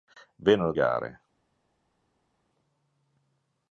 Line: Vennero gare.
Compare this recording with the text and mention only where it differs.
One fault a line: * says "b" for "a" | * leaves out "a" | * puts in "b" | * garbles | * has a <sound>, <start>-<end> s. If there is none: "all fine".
all fine